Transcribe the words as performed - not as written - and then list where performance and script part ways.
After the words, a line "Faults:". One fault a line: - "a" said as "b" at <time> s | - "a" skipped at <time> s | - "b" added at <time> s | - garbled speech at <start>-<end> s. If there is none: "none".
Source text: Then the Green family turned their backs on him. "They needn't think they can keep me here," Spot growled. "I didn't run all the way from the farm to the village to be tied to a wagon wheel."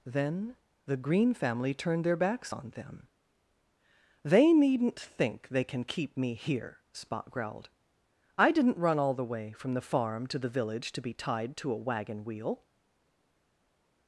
Then the Green family turned their backs on them. "They needn't think they can keep me here," Spot growled. "I didn't run all the way from the farm to the village to be tied to a wagon wheel."
Faults:
- "him" said as "them" at 2.7 s